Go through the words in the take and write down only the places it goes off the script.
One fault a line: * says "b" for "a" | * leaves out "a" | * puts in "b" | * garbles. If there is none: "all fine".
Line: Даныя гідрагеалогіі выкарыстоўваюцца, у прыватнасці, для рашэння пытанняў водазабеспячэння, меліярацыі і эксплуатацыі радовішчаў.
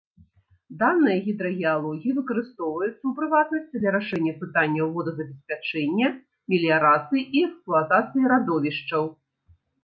all fine